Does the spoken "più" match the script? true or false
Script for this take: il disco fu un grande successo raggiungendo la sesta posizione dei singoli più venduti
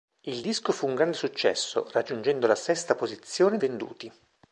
false